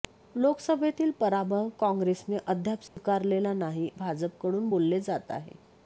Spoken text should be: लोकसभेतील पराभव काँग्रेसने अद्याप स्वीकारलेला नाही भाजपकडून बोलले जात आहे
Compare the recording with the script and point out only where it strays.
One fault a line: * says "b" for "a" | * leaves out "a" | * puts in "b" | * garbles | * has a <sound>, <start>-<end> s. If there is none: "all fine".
* has a dropout, 2.9-3.0 s